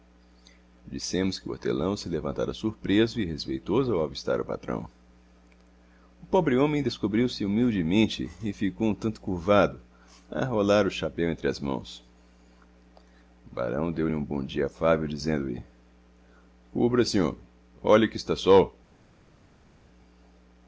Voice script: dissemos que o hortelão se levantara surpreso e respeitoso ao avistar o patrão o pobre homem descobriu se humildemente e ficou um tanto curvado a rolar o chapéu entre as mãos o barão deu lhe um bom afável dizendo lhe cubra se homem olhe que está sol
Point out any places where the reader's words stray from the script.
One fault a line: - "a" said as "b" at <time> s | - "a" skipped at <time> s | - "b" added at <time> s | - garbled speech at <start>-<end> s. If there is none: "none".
- "dia" added at 14.4 s